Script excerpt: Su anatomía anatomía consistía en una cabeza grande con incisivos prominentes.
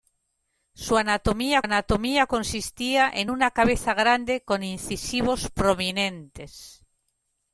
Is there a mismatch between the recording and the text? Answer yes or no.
no